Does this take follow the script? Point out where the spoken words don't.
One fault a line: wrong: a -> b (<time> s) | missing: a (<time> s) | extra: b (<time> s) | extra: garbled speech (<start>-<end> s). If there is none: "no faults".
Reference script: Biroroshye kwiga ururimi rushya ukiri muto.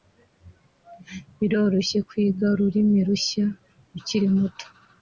no faults